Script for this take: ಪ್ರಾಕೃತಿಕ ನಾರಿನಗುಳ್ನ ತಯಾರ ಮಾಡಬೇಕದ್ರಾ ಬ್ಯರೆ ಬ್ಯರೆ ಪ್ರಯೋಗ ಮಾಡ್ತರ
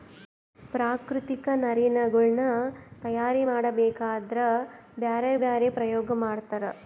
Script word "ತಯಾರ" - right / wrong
right